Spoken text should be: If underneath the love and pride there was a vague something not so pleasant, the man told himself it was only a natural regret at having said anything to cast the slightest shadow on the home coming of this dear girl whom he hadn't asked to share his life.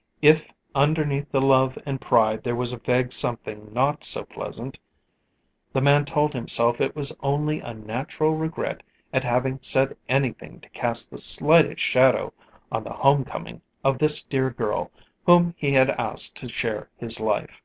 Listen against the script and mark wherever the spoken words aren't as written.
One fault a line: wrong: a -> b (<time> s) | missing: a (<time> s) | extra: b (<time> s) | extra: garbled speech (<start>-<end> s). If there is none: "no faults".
wrong: hadn't -> had (15.7 s)